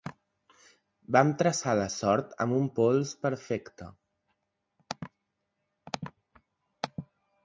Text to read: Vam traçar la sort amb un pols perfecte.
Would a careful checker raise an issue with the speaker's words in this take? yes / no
no